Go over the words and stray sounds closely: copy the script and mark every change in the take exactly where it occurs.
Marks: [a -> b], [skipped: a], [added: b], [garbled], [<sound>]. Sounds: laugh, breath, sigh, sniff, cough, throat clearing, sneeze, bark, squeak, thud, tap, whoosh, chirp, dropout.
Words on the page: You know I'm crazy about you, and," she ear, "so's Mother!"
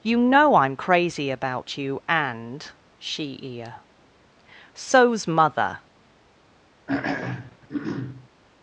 You know I'm crazy about you, and," she ear, "so's Mother!" [throat clearing]